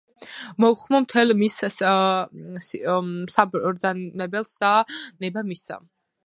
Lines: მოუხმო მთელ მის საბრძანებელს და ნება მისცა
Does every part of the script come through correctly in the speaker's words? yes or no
yes